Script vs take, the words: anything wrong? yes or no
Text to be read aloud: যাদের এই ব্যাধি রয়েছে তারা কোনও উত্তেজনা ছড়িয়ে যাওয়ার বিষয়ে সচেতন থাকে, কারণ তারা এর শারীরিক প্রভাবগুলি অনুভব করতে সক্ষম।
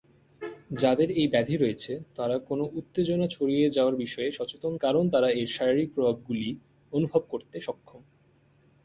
yes